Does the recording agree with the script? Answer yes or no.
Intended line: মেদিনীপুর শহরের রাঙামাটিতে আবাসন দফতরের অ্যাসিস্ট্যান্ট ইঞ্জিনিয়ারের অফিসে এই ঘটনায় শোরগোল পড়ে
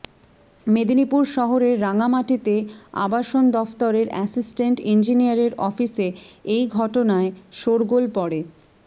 yes